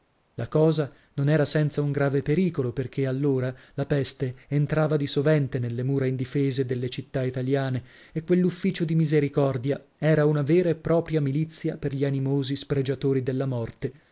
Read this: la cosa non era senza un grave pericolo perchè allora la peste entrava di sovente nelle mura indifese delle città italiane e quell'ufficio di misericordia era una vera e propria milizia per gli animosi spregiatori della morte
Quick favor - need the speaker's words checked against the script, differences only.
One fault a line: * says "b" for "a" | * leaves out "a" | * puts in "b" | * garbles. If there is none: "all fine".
all fine